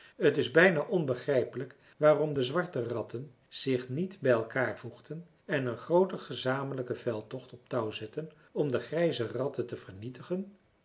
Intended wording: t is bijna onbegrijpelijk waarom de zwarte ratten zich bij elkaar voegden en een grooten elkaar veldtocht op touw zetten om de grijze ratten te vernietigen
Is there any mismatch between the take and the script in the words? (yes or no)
yes